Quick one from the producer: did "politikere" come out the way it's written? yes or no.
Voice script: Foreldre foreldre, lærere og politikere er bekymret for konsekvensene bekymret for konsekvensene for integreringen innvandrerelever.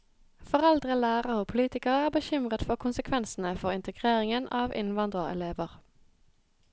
yes